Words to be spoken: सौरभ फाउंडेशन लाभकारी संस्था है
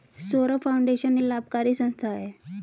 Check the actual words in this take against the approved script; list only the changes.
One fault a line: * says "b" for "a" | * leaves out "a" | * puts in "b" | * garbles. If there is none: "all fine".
all fine